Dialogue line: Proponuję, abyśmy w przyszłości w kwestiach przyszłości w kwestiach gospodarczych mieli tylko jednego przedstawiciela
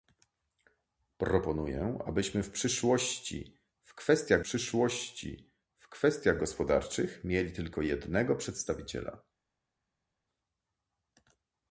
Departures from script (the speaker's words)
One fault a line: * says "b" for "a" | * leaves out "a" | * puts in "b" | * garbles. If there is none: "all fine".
all fine